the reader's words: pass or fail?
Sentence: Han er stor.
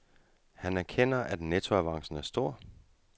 fail